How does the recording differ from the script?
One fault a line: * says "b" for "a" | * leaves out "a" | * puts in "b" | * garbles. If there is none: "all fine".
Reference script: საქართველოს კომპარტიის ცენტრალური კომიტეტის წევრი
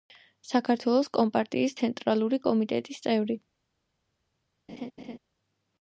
all fine